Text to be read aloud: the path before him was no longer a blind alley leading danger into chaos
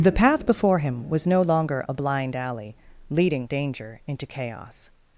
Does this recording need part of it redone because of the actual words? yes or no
no